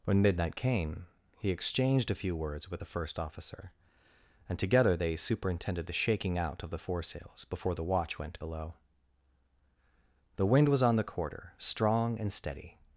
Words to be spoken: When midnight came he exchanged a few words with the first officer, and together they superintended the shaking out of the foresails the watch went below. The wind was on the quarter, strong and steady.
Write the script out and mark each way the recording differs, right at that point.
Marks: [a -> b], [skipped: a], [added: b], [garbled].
When midnight came he exchanged a few words with the first officer, and together they superintended the shaking out of the foresails [added: before] the watch went below. The wind was on the quarter, strong and steady.